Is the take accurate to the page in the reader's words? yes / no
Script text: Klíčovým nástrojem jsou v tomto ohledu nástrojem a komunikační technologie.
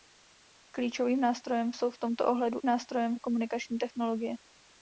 yes